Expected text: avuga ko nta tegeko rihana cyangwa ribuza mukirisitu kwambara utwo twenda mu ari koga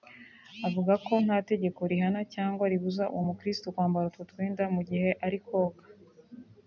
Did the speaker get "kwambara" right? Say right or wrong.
right